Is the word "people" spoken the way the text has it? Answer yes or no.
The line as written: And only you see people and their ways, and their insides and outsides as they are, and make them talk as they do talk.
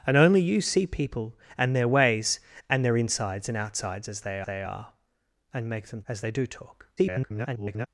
yes